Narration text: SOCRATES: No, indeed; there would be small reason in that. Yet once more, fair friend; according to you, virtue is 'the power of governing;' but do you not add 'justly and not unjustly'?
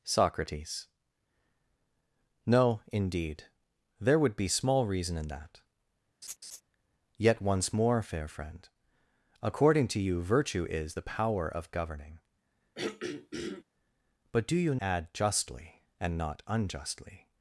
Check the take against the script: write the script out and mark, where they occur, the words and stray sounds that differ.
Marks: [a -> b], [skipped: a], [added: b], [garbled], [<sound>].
SOCRATES: No, indeed; there would be small reason in that. [laugh] Yet once more, fair friend; according to you, virtue is 'the power of governing;' [throat clearing] but do you [skipped: not] add 'justly and not unjustly'?